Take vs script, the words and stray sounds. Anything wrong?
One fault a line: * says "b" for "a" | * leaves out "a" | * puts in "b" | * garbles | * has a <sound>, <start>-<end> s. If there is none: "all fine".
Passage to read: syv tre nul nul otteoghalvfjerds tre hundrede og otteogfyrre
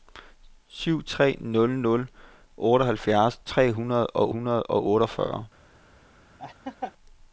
* puts in "hundrede og"
* has a laugh, 6.4-6.9 s